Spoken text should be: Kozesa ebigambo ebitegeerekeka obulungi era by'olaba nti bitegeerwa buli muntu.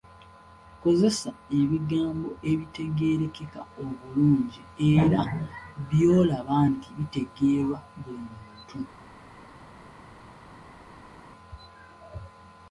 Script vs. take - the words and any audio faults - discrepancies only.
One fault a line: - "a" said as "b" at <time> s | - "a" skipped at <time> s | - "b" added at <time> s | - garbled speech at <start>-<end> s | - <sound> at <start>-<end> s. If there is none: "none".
none